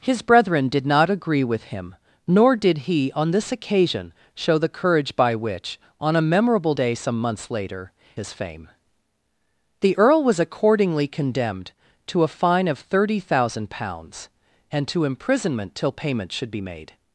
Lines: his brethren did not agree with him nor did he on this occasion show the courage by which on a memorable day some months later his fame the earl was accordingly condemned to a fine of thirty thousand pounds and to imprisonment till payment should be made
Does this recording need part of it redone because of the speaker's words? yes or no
no